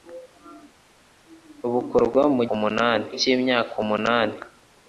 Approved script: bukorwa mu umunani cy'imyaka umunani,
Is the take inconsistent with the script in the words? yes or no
no